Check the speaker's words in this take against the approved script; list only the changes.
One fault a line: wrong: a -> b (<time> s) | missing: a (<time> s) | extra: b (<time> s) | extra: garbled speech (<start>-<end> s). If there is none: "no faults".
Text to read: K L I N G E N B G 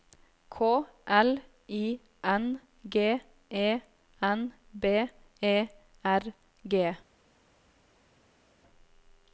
extra: E R (5.4 s)